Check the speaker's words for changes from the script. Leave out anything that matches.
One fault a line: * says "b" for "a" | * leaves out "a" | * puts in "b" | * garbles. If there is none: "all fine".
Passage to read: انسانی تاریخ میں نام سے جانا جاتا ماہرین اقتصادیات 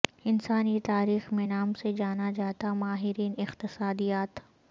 all fine